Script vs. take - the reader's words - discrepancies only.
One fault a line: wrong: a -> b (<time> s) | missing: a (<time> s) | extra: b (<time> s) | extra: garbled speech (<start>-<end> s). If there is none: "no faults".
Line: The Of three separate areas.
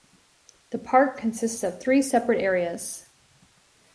extra: Park consists (0.8 s)